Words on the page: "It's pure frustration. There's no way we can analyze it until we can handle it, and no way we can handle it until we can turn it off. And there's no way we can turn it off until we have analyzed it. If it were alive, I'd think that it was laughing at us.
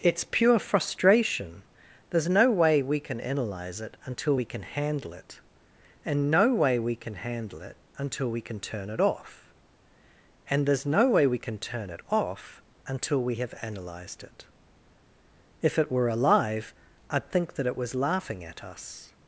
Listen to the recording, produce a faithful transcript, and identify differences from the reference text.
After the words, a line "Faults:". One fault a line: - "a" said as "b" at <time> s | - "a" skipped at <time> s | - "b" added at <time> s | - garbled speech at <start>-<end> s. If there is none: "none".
"It's pure frustration. There's no way we can analyze it until we can handle it, and no way we can handle it until we can turn it off. And there's no way we can turn it off until we have analyzed it. If it were alive, I'd think that it was laughing at us.
Faults:
none